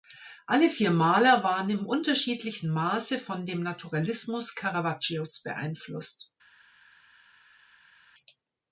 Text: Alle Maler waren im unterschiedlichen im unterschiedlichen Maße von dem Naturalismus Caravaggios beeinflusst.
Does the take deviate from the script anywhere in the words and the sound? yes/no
yes